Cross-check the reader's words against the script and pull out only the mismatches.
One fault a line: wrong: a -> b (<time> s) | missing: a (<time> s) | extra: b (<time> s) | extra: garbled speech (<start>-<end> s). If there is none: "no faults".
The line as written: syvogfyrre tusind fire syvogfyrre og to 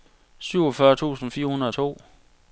wrong: syvogfyrre -> hundrede (1.5 s)